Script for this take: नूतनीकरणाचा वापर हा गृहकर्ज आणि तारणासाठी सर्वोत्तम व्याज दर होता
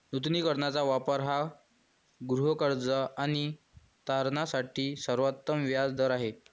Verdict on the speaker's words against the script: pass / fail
fail